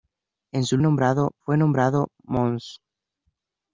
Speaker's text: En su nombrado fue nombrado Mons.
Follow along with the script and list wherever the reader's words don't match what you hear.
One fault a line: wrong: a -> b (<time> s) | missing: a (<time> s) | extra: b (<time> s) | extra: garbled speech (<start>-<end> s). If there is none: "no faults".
no faults